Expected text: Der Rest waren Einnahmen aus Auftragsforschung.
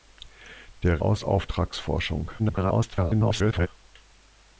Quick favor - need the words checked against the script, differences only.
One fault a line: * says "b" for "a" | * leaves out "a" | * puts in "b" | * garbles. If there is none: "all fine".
* leaves out "Rest waren Einnahmen"
* garbles